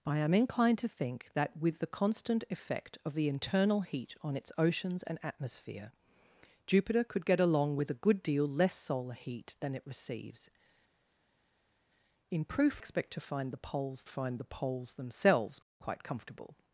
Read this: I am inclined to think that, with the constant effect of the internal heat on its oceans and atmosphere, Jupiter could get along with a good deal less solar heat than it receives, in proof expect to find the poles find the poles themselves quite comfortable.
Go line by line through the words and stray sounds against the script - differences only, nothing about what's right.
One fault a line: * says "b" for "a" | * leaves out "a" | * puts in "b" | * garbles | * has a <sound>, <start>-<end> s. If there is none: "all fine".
all fine